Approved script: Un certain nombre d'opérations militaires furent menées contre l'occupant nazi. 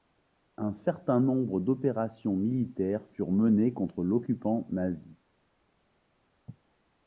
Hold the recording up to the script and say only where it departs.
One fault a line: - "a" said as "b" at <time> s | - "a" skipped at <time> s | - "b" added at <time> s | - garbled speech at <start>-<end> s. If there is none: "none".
none